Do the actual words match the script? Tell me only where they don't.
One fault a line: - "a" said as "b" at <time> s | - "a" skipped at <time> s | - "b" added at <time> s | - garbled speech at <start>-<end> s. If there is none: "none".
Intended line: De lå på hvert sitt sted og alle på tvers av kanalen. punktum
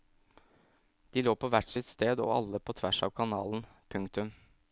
none